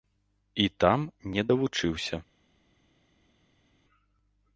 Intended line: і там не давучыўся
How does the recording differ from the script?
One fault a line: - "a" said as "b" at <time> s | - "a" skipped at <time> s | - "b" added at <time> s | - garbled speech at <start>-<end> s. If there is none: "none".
none